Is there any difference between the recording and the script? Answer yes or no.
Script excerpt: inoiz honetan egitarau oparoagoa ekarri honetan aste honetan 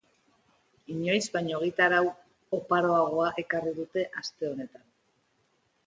yes